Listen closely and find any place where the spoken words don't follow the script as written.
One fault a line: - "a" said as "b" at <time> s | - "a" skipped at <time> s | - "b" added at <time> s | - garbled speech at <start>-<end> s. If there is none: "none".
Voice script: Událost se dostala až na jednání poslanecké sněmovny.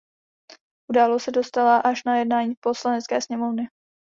none